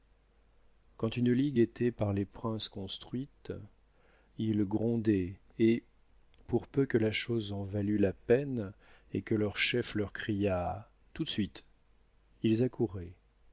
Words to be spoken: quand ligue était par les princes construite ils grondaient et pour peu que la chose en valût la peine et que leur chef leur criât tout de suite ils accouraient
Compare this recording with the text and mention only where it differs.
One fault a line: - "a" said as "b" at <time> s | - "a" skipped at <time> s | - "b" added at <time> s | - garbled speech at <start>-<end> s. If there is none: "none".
- "une" added at 1.2 s